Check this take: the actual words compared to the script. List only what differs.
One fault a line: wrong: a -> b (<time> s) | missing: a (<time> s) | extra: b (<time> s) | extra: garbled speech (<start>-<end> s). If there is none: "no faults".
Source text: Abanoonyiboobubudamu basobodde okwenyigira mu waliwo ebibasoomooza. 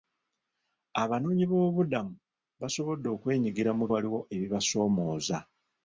no faults